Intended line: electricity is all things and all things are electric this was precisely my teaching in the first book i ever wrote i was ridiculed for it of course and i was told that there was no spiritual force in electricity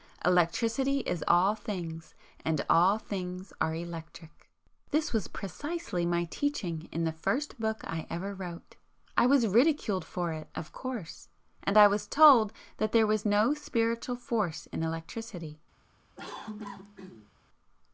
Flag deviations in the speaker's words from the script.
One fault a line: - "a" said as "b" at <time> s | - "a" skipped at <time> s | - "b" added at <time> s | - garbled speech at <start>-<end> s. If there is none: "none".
none